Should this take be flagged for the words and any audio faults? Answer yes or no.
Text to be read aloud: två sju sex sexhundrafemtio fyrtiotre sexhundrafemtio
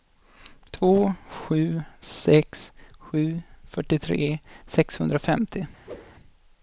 yes